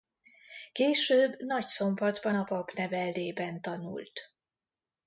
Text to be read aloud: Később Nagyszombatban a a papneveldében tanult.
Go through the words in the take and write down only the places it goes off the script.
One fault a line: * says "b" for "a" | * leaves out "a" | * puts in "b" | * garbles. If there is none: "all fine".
* leaves out "a"